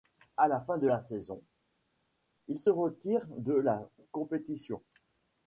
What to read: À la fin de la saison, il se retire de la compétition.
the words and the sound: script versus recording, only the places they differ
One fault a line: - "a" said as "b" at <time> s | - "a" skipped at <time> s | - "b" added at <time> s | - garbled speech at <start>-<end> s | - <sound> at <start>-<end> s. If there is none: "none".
none